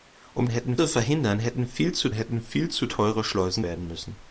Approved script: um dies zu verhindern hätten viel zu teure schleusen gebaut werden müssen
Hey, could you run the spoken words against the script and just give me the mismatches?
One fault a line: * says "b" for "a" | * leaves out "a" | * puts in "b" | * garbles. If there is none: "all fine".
* says "hätten" for "dies"
* puts in "hätten viel zu"
* leaves out "gebaut"